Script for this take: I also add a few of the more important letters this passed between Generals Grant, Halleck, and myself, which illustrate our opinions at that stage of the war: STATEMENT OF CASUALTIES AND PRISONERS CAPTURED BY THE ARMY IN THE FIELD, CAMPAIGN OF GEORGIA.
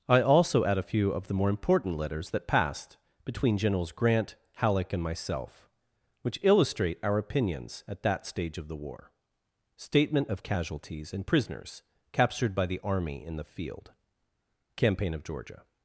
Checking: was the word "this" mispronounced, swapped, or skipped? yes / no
yes